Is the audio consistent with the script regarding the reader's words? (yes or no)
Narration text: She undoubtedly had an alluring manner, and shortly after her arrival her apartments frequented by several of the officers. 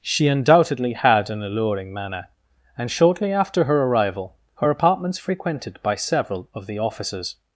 yes